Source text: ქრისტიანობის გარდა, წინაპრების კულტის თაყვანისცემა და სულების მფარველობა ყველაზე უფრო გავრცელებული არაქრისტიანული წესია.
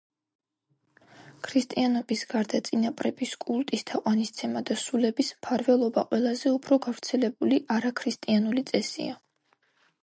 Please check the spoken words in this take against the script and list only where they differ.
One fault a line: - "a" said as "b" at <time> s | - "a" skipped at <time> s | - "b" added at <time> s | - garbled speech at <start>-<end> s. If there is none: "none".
none